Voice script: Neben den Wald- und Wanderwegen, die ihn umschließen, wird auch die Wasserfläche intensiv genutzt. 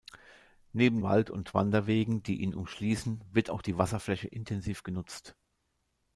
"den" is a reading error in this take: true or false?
true